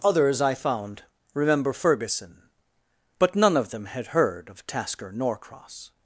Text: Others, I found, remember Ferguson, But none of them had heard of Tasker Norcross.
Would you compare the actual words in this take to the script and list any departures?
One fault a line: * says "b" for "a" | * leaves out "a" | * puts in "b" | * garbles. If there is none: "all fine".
all fine